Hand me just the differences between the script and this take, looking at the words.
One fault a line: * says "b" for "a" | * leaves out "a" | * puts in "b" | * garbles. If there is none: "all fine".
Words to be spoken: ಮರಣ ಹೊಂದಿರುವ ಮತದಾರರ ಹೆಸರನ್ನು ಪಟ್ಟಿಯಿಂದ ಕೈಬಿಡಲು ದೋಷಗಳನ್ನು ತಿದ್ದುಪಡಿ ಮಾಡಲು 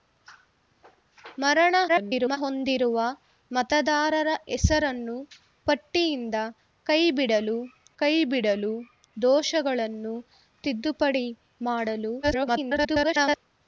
* garbles
* puts in "ಕೈಬಿಡಲು"
* garbles